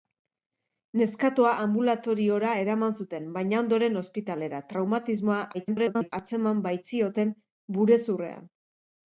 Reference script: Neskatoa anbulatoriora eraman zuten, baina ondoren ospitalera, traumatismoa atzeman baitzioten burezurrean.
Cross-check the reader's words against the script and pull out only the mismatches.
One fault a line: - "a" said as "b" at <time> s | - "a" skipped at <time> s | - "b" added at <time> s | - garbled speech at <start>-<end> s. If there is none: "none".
- garbled speech at 5.5-6.1 s